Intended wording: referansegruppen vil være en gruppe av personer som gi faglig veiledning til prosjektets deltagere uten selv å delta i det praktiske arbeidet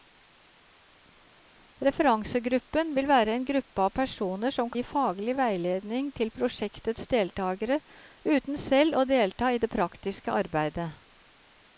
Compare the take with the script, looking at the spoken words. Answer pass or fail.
pass